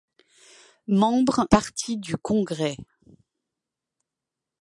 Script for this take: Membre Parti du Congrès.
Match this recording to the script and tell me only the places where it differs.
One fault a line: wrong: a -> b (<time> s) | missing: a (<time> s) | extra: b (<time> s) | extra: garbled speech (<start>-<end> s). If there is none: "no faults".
no faults